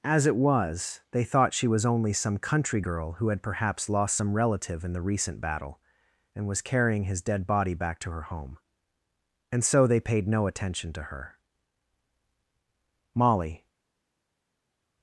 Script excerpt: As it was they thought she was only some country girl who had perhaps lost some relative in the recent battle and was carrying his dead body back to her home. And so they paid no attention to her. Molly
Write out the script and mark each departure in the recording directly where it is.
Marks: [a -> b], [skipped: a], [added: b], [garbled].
As it was they thought she was only some country girl who had perhaps lost some relative in the recent battle and was carrying his dead body back to her home. And so they paid no attention to her. Molly